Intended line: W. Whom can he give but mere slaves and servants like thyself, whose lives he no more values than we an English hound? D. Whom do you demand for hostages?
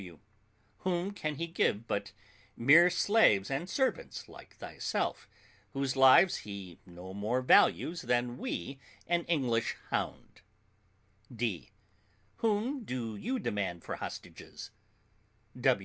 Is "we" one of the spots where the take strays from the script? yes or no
no